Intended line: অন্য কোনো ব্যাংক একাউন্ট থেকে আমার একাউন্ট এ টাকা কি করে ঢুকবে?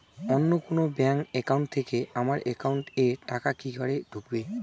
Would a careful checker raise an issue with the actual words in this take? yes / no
no